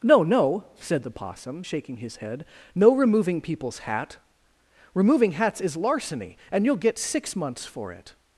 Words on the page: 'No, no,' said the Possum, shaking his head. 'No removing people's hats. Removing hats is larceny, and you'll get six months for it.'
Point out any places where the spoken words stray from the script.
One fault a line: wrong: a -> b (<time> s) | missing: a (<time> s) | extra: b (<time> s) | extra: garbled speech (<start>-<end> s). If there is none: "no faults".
wrong: hats -> hat (3.8 s)